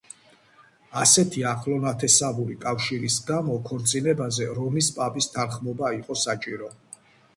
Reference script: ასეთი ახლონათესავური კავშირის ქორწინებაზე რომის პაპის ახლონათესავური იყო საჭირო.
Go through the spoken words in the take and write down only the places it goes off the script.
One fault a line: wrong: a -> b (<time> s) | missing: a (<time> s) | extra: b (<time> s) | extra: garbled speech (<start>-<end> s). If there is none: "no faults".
extra: გამო (3.3 s)
wrong: ახლონათესავური -> თანხმობა (5.4 s)